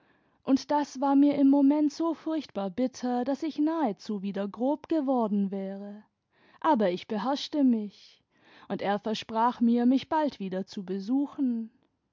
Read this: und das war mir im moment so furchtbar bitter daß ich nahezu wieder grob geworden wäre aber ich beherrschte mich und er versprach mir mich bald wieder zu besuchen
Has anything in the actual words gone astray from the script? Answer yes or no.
no